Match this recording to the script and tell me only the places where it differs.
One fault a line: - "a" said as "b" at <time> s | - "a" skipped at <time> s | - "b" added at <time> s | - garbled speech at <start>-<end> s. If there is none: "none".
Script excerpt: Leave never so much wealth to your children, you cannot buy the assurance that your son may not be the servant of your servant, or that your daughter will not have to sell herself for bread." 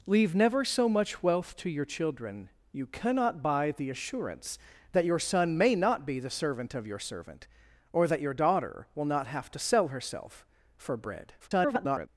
- garbled speech at 11.4-12.1 s